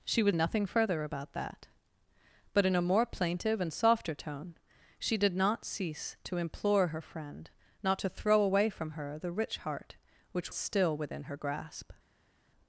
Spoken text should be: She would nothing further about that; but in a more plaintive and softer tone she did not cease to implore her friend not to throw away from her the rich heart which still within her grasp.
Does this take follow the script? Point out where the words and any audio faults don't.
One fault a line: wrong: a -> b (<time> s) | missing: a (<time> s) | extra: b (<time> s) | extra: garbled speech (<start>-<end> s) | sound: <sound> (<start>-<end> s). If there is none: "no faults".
no faults